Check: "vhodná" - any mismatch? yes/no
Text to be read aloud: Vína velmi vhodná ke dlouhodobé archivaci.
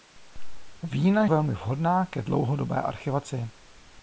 no